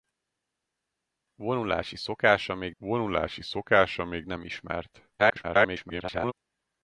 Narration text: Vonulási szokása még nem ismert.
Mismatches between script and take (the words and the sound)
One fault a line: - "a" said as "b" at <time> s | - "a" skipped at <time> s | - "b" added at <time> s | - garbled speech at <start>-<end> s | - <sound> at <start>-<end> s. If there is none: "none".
- "vonulási szokása még" added at 2.8 s
- garbled speech at 5.2-6.3 s